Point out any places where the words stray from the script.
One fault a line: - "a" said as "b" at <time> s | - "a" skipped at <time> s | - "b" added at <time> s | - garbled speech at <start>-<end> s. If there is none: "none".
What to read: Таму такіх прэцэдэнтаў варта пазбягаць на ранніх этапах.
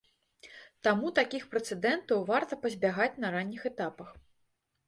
none